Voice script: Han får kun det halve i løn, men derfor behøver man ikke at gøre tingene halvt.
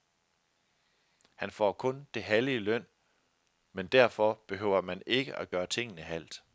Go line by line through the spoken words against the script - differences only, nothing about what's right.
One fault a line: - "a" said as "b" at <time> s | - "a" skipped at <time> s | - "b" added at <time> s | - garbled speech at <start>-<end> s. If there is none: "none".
none